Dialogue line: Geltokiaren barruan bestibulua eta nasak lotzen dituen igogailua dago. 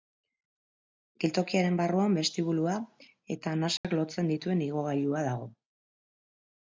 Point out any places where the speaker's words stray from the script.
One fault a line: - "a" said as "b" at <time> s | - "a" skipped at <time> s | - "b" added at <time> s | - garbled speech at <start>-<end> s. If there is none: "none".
none